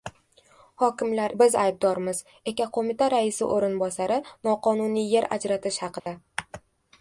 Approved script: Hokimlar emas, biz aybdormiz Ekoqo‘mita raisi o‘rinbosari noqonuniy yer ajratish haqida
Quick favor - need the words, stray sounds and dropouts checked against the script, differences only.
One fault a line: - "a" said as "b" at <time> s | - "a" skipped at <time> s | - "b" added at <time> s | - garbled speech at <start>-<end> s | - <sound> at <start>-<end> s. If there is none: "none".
- "emas" skipped at 1.3 s
- dropout at 6.0-6.1 s